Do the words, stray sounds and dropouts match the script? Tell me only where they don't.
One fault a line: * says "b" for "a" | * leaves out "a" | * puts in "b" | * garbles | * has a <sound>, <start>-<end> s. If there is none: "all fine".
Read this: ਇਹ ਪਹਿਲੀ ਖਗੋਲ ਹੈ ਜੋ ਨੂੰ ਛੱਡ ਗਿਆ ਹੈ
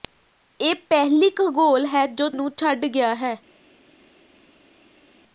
all fine